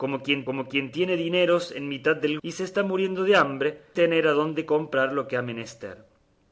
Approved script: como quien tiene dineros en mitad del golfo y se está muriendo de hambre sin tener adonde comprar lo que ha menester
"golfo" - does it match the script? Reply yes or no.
no